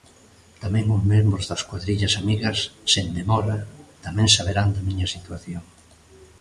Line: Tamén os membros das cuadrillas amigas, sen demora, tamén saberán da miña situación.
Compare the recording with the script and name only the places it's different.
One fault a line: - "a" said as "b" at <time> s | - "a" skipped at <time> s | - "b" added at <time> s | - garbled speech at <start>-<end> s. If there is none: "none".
none